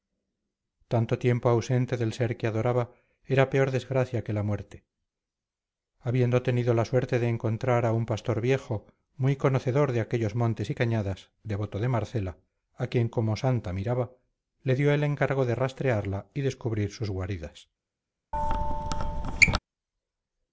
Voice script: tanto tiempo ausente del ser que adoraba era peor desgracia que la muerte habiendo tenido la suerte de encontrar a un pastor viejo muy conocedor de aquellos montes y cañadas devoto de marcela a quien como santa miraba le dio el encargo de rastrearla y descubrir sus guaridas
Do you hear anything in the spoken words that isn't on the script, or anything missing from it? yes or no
no